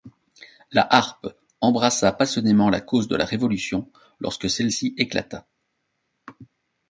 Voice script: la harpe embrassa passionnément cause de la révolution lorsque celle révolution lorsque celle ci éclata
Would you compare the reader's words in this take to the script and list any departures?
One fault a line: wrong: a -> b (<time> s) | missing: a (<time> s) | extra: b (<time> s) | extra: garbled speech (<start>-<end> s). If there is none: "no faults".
extra: la (2.7 s)
missing: révolution lorsque celle (4.7 s)